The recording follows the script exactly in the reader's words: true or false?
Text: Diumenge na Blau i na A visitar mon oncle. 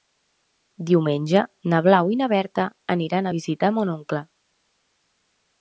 false